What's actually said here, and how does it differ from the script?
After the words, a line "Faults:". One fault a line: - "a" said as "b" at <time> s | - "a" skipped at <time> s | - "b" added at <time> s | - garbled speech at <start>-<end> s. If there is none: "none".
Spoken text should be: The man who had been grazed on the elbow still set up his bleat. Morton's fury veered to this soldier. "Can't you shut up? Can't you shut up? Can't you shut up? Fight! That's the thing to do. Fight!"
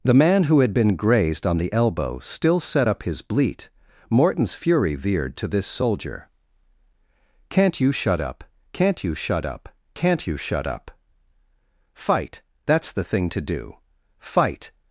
The man who had been grazed on the elbow still set up his bleat. Morton's fury veered to this soldier. "Can't you shut up? Can't you shut up? Can't you shut up? Fight! That's the thing to do. Fight!"
Faults:
none